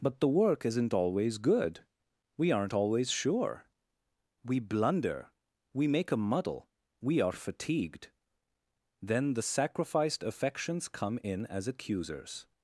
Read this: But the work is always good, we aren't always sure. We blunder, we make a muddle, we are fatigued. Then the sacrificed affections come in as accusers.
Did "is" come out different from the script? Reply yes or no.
yes